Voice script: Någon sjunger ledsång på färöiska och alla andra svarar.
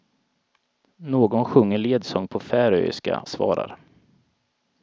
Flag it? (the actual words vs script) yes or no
yes